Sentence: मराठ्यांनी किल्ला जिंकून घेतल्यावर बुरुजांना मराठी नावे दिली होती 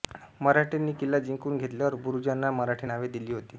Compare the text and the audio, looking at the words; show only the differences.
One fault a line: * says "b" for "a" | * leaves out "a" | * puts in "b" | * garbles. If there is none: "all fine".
all fine